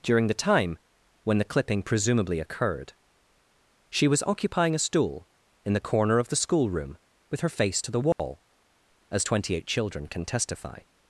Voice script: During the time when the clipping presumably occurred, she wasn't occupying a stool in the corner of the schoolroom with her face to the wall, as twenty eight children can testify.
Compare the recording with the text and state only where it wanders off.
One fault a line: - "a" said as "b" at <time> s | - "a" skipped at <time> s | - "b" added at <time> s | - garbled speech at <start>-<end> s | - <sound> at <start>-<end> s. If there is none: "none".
- "wasn't" said as "was" at 4.1 s
- dropout at 8.1-8.2 s